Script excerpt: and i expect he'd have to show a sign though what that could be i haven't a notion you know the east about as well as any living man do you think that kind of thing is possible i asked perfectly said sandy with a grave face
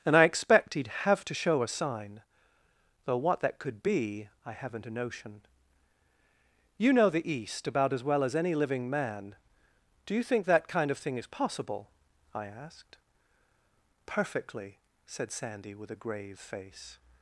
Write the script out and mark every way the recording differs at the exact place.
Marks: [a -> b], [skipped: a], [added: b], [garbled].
and i expect he'd have to show a sign though what that could be i haven't a notion you know the east about as well as any living man do you think that kind of thing is possible i asked perfectly said sandy with a grave face